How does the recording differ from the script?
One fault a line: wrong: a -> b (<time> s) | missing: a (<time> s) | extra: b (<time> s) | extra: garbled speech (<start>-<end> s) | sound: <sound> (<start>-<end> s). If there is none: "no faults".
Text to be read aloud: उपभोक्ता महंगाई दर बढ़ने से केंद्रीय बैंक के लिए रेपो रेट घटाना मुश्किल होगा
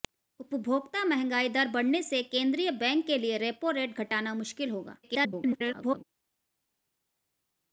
extra: garbled speech (5.0-6.0 s)